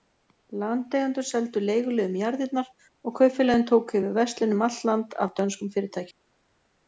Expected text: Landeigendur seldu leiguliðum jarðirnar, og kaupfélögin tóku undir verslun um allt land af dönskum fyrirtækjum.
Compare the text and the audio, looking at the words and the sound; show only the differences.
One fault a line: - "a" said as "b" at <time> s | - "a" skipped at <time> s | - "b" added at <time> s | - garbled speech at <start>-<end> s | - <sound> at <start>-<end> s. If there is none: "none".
- "undir" said as "yfir" at 4.0 s